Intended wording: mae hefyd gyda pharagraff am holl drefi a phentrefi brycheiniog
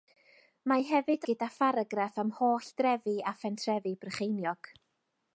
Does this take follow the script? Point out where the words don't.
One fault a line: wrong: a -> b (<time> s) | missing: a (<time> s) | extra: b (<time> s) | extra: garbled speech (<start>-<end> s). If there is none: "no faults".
no faults